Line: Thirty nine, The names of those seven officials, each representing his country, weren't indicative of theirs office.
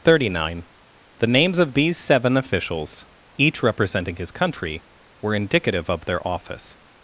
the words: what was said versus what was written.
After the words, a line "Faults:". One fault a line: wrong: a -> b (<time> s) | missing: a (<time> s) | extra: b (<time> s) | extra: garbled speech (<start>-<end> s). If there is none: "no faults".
Thirty nine, The names of these seven officials, each representing his country, were indicative of their office.
Faults:
wrong: those -> these (1.8 s)
wrong: weren't -> were (5.2 s)
wrong: theirs -> their (6.0 s)